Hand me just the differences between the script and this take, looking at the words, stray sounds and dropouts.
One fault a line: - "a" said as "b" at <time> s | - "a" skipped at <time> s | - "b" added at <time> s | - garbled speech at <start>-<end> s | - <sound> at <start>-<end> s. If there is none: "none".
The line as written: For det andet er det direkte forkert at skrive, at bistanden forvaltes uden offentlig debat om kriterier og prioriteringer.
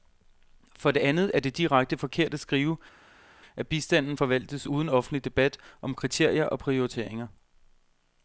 none